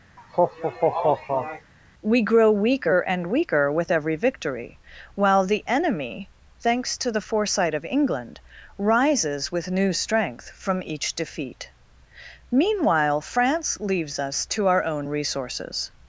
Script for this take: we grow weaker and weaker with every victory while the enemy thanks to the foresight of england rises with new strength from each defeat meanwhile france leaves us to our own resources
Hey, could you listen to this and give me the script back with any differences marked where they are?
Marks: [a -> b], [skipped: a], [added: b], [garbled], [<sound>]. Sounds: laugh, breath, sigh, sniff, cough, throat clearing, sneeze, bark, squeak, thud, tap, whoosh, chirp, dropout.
[laugh] we grow weaker and weaker with every victory while the enemy thanks to the foresight of england rises with new strength from each defeat meanwhile france leaves us to our own resources